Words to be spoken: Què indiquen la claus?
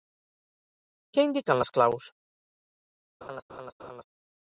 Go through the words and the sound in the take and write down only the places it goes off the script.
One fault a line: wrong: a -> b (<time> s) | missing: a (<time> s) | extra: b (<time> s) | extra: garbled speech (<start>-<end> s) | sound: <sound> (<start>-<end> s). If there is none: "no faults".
wrong: la -> les (1.6 s)
sound: laugh (3.2-4.0 s)